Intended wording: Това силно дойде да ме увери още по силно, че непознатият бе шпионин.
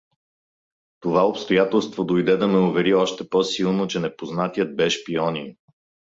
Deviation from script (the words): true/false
true